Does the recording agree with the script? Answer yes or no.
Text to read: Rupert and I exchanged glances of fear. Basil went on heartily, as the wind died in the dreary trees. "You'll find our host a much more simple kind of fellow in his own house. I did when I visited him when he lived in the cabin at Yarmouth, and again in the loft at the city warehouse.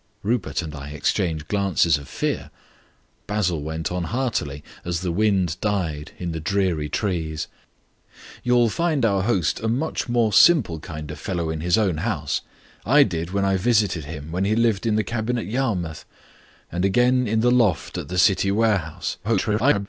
no